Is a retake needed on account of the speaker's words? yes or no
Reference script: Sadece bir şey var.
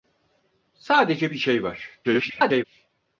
yes